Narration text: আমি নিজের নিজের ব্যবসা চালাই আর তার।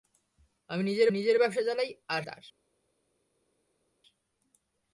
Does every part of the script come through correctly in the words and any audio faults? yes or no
yes